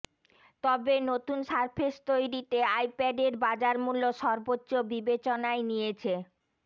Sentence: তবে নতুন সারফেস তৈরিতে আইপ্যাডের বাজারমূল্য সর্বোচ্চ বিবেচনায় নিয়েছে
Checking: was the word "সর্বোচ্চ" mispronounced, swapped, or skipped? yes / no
no